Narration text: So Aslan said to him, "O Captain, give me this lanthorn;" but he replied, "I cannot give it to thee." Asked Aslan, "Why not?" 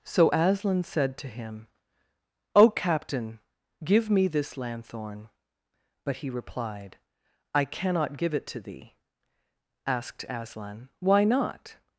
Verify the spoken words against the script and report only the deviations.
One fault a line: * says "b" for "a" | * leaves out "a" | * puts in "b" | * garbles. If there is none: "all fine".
all fine